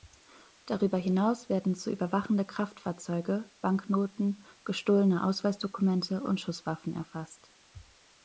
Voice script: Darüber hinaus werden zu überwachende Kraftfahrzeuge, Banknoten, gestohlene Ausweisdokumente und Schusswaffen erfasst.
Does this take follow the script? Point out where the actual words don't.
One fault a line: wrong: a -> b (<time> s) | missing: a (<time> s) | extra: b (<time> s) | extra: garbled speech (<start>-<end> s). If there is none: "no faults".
no faults